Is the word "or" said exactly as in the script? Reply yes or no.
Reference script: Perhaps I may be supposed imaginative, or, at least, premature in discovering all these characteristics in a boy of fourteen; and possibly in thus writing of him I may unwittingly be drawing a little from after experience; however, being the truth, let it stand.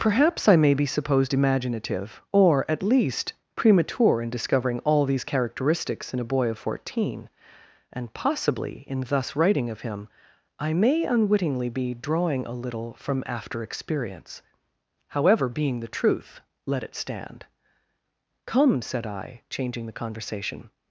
yes